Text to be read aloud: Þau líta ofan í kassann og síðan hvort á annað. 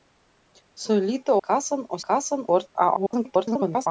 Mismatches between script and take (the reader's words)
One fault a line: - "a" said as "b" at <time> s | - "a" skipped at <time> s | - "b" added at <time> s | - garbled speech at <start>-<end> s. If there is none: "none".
- "ofan" skipped at 1.4 s
- "síðan" said as "kassann" at 2.1 s
- garbled speech at 3.0-3.9 s